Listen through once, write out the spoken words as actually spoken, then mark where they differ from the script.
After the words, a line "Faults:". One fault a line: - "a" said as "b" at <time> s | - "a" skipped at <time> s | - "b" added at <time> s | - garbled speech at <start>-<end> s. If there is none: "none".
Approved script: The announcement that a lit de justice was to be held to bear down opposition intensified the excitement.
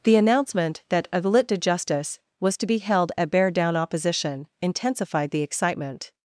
The announcement that a lit de justice was to be held at bear down opposition intensified the excitement.
Faults:
- "to" said as "at" at 3.2 s